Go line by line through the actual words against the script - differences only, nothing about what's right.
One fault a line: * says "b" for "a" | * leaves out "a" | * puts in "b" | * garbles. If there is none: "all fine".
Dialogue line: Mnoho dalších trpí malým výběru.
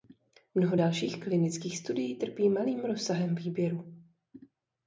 * puts in "klinických studií"
* puts in "rozsahem"